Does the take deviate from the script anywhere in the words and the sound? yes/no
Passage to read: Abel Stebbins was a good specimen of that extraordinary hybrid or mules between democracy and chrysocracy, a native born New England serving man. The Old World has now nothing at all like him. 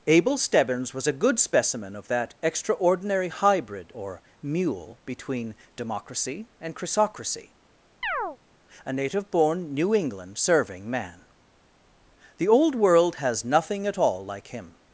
yes